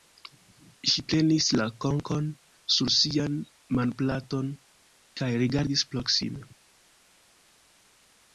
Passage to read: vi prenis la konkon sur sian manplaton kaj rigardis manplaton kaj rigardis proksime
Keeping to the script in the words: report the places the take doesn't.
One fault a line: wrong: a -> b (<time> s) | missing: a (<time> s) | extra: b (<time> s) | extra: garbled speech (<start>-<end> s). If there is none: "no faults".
wrong: vi -> ŝi (0.9 s)
missing: manplaton kaj rigardis (5.9 s)